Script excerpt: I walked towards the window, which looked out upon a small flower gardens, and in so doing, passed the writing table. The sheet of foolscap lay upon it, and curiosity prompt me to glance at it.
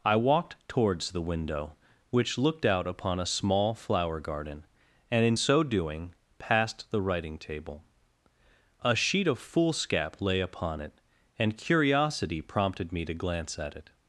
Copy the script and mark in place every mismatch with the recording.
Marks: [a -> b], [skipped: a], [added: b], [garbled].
I walked towards the window, which looked out upon a small flower [gardens, -> garden] and in so doing, passed the writing table. [The -> A] sheet of foolscap lay upon it, and curiosity [prompt -> prompted] me to glance at it.